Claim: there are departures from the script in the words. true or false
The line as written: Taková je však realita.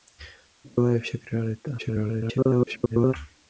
true